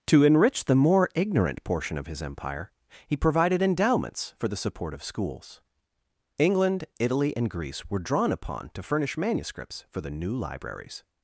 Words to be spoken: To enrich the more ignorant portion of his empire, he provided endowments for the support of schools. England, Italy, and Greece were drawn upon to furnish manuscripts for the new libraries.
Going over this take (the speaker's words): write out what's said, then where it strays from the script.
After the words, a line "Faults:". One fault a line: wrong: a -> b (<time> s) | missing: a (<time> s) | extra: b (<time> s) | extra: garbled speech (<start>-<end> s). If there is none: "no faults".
To enrich the more ignorant portion of his empire, he provided endowments for the support of schools. England, Italy, and Greece were drawn upon to furnish manuscripts for the new libraries.
Faults:
no faults